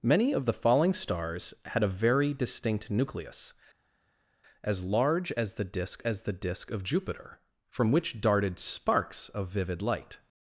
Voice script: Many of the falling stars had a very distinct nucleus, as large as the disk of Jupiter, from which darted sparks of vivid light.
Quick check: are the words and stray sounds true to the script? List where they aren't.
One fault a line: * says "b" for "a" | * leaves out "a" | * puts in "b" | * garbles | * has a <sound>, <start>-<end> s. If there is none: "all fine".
* puts in "as the disk"